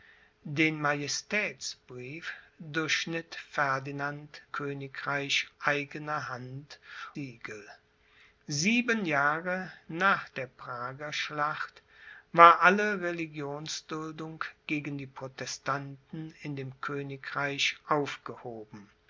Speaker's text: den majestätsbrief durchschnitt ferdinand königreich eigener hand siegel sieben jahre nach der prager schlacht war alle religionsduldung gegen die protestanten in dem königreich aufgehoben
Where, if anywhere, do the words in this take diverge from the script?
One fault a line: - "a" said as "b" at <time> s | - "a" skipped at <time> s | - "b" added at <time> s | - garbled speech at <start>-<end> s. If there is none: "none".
none